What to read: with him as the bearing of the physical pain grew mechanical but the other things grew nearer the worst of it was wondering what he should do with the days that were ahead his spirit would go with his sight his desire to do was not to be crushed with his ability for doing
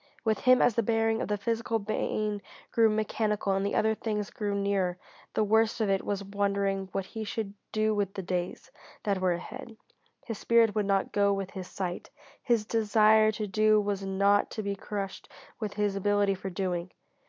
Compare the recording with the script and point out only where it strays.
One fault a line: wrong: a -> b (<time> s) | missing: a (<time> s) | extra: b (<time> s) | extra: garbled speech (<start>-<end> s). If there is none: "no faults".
wrong: but -> and (3.5 s)
extra: not (10.9 s)